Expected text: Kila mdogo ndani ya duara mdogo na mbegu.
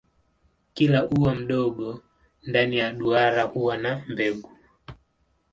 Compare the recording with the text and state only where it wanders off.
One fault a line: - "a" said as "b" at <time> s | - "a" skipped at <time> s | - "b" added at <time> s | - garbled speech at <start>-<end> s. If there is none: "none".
- "ua" added at 1.1 s
- "mdogo" said as "huwa" at 3.4 s